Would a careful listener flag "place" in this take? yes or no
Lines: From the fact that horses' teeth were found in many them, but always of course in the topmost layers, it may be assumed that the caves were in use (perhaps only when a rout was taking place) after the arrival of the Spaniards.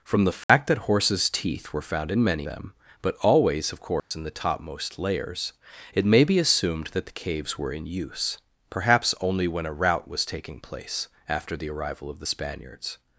no